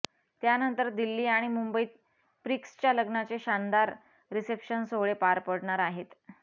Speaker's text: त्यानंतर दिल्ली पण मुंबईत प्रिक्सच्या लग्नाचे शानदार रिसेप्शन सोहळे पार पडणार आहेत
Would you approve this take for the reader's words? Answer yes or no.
no